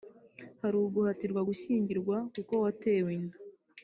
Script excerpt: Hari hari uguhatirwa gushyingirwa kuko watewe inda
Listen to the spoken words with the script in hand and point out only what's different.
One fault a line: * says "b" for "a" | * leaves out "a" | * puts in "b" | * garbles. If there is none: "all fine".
* leaves out "hari"